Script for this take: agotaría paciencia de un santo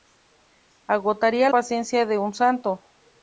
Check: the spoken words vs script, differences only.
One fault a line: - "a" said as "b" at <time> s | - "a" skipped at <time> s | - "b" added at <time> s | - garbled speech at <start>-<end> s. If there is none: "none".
none